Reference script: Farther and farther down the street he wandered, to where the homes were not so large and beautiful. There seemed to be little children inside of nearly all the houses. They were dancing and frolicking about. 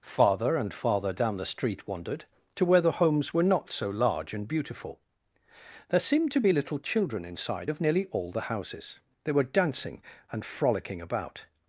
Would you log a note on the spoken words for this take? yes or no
yes